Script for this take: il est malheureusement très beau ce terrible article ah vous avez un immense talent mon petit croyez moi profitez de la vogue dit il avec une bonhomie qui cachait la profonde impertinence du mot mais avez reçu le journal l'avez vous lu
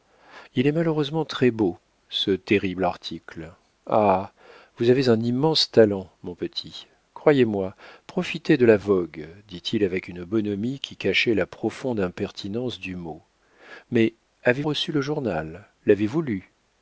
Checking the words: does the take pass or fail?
pass